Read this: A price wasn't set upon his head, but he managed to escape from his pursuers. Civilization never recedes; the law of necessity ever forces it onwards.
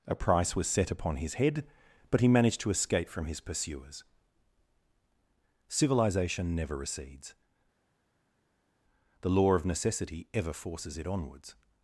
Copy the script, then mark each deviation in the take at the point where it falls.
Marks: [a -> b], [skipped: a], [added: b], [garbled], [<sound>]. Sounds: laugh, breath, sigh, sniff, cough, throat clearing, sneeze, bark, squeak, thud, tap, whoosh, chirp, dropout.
A price [wasn't -> was] set upon his head, but he managed to escape from his pursuers. Civilization never recedes; the law of necessity ever forces it onwards.